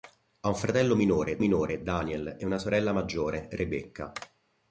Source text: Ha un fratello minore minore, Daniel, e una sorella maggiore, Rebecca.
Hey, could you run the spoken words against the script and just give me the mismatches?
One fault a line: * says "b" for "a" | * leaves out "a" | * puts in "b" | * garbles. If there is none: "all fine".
all fine